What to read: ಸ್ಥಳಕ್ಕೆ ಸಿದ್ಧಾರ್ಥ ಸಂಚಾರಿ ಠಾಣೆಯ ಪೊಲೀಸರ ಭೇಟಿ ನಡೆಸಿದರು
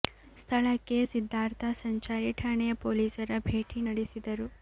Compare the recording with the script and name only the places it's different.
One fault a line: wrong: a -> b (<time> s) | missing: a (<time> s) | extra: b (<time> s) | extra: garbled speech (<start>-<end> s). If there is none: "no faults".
no faults